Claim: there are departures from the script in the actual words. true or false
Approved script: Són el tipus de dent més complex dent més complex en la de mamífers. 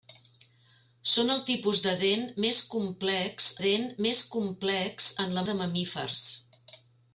false